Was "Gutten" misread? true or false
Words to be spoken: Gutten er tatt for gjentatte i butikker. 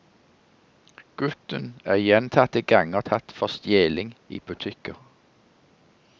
false